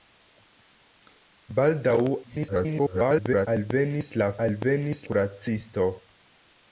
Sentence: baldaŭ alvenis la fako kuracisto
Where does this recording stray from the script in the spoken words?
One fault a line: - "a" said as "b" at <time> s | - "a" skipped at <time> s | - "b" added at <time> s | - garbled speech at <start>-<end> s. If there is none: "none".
- garbled speech at 2.2-3.5 s
- "fako" said as "alvenis" at 4.5 s